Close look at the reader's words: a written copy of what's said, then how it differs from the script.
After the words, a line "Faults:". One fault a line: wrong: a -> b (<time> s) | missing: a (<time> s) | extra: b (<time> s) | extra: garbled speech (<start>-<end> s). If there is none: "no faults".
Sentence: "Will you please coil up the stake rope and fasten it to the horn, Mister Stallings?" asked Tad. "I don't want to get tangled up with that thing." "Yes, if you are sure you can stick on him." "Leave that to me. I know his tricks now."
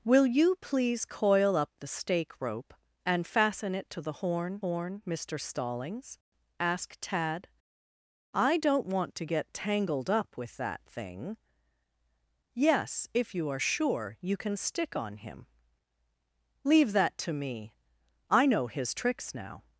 "Will you please coil up the stake rope and fasten it to the horn horn, Mister Stallings?" asked Tad. "I don't want to get tangled up with that thing." "Yes, if you are sure you can stick on him." "Leave that to me. I know his tricks now."
Faults:
extra: horn (4.6 s)